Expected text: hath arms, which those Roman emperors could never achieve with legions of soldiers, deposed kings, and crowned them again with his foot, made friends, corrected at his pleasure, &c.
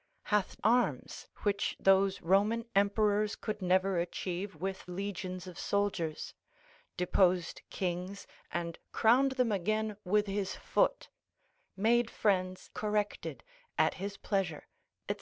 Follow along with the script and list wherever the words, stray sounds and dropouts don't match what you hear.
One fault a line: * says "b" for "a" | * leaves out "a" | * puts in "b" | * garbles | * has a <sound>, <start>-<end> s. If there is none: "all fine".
all fine